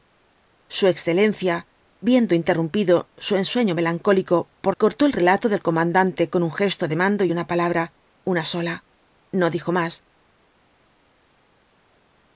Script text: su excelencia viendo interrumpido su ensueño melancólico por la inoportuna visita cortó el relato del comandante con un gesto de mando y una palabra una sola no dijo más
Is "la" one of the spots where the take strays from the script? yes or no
yes